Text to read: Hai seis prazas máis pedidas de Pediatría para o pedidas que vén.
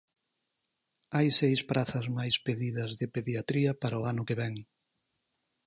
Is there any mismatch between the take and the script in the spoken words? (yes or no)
yes